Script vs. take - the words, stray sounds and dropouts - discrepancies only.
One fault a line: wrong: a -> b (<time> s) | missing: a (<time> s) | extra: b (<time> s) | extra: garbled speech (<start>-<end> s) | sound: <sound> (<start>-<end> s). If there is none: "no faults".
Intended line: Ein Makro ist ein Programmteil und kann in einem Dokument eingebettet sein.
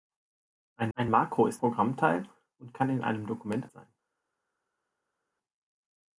extra: ein (1.0 s)
missing: ein (1.6 s)
missing: eingebettet (3.7 s)